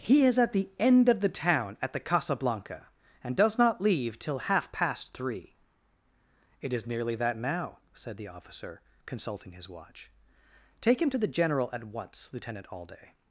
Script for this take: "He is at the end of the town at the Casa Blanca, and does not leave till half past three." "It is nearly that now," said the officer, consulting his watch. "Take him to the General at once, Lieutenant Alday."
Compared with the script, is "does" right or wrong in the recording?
right